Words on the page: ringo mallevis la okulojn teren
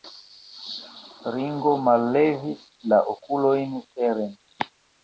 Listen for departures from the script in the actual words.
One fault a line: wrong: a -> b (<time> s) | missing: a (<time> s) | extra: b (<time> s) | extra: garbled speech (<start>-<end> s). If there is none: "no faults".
no faults